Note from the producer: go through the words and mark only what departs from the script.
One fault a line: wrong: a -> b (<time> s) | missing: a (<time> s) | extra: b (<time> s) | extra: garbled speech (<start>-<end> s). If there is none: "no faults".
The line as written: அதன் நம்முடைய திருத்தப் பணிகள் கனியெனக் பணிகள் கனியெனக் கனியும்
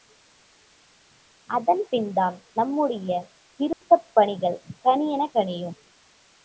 extra: பின்தான் (1.9 s)
missing: பணிகள் கனியெனக் (5.4 s)